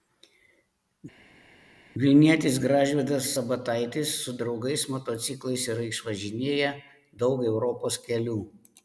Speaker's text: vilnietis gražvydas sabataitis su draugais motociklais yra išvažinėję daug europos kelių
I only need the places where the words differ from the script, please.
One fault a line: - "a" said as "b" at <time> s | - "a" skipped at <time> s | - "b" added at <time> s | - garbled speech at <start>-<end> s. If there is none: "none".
none